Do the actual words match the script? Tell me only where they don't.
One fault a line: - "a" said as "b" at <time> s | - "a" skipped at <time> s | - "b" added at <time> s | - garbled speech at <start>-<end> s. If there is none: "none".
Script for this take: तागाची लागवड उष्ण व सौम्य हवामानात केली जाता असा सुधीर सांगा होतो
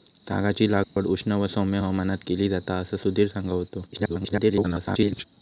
- garbled speech at 3.9-5.2 s